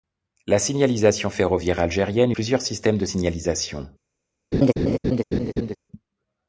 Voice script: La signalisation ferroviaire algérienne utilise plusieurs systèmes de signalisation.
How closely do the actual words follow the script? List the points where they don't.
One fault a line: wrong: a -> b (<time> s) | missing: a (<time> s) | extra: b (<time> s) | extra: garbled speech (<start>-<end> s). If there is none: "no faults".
missing: utilise (2.3 s)